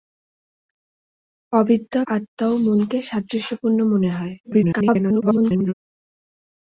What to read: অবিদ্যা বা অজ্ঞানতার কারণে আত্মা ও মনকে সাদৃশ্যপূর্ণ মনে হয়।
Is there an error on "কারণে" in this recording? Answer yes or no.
yes